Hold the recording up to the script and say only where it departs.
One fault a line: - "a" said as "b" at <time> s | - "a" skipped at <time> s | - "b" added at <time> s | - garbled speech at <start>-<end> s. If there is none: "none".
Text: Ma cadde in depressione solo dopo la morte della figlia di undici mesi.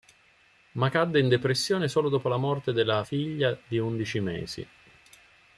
none